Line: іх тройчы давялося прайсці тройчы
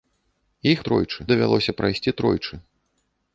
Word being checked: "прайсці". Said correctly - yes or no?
yes